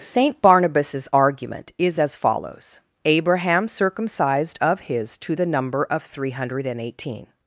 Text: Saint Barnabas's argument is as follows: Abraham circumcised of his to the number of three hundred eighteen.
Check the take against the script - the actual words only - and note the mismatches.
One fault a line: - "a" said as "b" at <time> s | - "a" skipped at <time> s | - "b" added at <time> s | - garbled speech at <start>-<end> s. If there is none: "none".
none